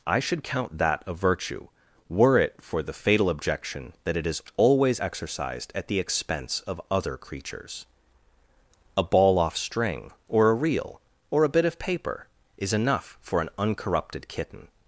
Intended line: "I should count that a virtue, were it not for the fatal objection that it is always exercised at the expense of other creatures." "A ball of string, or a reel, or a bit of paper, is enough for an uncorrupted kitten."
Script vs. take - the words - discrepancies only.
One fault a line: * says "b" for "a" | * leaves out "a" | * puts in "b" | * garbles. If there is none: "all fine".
* leaves out "not"
* says "off" for "of"